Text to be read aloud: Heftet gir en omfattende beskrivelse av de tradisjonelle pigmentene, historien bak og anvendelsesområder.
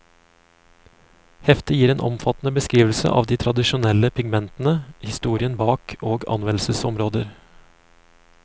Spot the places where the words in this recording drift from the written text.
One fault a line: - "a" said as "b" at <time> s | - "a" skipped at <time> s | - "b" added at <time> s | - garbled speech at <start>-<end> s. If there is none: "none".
none